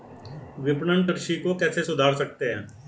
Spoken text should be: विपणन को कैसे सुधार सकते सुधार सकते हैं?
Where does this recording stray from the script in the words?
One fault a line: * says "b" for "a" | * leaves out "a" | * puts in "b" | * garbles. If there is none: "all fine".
* puts in "कृषि"
* leaves out "सुधार सकते"